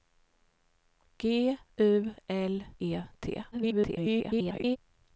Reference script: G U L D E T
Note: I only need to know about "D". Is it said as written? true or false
false